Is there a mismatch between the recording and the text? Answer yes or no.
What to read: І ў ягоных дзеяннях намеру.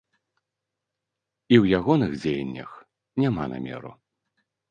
yes